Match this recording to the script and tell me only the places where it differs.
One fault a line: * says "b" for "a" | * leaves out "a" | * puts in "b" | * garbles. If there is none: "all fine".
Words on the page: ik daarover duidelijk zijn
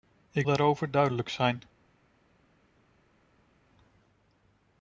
all fine